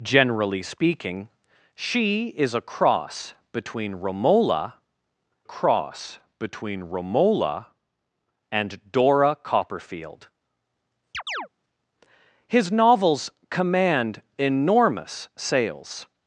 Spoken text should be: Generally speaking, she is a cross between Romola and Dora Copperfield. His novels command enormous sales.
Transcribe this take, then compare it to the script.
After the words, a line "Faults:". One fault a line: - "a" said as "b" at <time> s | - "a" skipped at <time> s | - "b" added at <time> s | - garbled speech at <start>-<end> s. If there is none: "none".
Generally speaking, she is a cross between Romola cross between Romola and Dora Copperfield. His novels command enormous sales.
Faults:
- "cross between Romola" added at 5.4 s